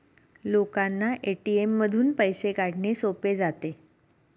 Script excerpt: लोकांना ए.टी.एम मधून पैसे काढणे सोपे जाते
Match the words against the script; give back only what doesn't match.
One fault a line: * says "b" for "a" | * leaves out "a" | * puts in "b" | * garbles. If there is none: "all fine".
all fine